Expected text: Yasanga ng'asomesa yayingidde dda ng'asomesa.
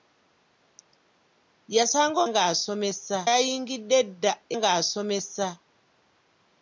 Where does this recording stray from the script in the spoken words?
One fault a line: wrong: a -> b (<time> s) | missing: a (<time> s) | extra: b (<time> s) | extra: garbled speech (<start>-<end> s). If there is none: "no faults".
no faults